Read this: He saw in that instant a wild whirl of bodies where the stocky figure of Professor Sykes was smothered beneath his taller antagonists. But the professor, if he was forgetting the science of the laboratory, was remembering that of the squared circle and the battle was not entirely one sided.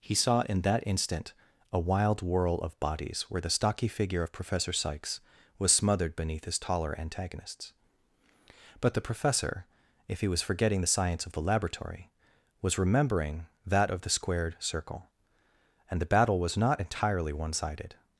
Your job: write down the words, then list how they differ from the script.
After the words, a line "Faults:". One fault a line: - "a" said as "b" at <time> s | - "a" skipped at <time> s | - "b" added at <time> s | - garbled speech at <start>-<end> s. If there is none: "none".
He saw in that instant a wild whirl of bodies where the stocky figure of Professor Sykes was smothered beneath his taller antagonists. But the professor, if he was forgetting the science of the laboratory, was remembering that of the squared circle and the battle was not entirely one sided.
Faults:
none